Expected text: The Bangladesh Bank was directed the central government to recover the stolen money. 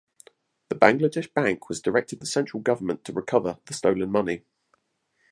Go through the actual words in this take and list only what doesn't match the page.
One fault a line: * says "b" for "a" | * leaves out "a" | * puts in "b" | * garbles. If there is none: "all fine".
all fine